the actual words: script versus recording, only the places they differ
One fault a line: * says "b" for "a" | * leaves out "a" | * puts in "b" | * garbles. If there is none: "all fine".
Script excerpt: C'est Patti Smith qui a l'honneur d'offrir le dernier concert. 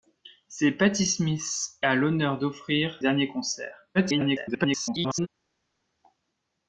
* leaves out "qui"
* leaves out "le"
* garbles